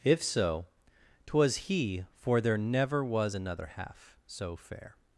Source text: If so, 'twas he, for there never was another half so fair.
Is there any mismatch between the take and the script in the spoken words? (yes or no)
no